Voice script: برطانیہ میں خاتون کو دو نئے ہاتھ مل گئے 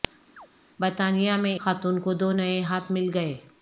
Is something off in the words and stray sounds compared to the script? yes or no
yes